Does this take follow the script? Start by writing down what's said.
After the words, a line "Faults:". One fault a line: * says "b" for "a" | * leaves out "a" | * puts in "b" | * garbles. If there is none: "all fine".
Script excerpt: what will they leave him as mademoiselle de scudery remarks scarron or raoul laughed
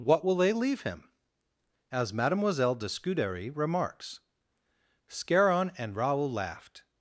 what will they leave him as mademoiselle de scudery remarks scarron and raoul laughed
Faults:
* says "and" for "or"